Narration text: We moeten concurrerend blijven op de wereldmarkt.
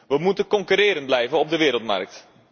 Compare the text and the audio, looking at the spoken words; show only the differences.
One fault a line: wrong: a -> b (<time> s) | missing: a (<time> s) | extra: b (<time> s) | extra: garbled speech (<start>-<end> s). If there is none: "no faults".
no faults